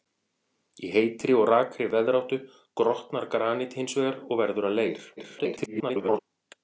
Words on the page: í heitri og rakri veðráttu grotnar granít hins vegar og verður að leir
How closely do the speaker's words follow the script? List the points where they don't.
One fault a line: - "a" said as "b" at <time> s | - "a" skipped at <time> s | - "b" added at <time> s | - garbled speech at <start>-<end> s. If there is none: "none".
- garbled speech at 5.2-6.2 s